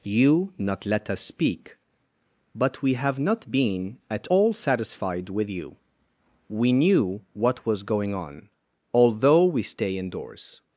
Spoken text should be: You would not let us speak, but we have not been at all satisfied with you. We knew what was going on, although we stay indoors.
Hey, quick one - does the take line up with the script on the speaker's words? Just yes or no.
no